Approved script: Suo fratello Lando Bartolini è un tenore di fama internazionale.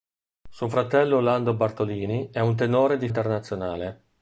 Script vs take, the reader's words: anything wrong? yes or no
yes